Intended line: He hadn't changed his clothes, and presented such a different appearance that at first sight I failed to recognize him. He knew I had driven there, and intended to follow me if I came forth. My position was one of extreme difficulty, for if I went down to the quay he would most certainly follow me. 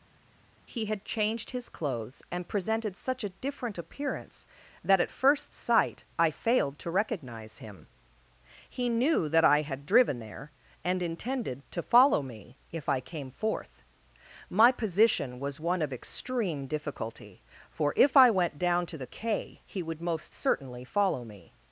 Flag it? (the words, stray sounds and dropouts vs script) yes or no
yes